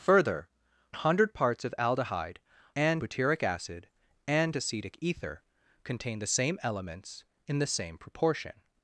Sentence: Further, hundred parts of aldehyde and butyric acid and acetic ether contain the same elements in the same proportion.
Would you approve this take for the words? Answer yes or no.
yes